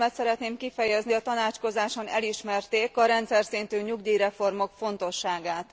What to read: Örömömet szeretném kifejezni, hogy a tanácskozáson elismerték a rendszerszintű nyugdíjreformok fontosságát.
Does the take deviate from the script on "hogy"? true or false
true